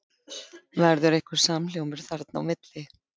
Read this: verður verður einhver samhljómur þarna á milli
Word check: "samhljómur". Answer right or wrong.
right